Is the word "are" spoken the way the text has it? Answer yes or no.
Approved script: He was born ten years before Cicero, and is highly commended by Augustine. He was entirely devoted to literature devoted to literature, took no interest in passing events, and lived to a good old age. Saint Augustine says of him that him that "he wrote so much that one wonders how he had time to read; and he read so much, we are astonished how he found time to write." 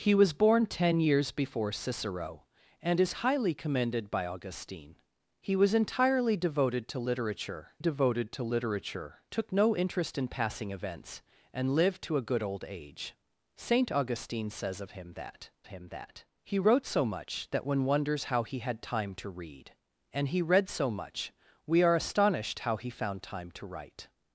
yes